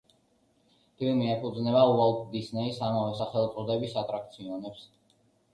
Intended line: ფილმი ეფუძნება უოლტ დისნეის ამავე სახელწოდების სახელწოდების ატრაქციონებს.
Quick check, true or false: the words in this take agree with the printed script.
false